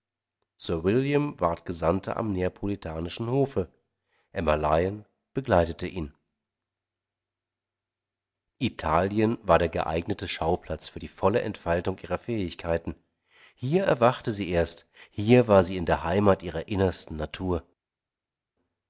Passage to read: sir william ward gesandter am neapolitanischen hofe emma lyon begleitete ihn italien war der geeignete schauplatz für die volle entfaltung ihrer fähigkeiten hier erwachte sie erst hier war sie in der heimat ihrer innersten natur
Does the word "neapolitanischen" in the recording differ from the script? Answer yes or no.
no